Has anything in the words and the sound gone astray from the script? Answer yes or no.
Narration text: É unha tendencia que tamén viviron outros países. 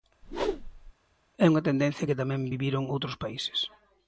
yes